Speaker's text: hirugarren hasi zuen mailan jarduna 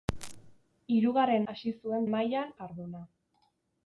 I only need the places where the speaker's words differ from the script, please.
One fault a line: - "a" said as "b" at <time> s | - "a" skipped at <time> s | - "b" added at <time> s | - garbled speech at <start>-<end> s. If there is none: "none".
none